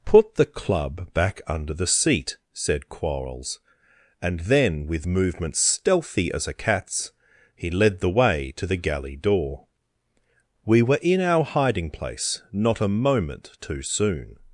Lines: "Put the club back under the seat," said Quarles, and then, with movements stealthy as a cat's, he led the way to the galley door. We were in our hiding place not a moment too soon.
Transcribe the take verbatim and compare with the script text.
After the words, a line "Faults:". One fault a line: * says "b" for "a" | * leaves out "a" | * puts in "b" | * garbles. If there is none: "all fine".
"Put the club back under the seat," said Quarles, and then, with movements stealthy as a cat's, he led the way to the galley door. We were in our hiding place not a moment too soon.
Faults:
all fine